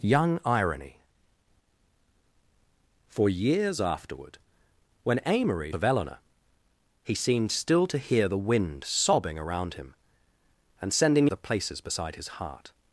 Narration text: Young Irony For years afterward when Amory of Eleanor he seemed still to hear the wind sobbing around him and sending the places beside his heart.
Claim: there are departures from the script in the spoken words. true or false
false